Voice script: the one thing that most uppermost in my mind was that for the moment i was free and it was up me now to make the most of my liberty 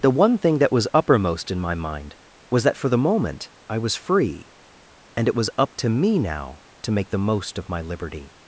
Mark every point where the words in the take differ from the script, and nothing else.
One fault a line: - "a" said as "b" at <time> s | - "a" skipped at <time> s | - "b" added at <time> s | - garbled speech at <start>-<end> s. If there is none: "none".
- "most" said as "was" at 0.7 s
- "to" added at 5.7 s